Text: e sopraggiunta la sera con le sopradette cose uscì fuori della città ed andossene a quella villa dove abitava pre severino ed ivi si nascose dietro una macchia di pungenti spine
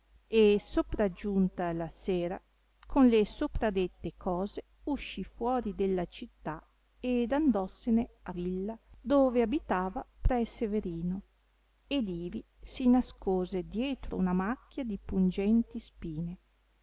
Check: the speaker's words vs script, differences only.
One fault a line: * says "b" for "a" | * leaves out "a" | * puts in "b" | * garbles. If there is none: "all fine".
* leaves out "quella"